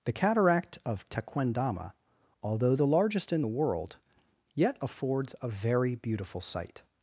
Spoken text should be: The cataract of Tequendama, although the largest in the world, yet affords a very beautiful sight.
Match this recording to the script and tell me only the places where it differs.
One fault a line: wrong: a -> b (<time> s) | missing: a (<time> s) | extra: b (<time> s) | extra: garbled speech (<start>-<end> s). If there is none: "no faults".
no faults